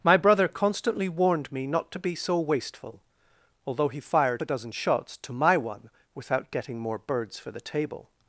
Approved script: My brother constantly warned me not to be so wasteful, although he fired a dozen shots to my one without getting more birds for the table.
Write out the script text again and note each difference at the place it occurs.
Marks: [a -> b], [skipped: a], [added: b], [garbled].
My brother constantly warned me not to be so wasteful, although he fired a dozen shots to my one without getting more birds for the table.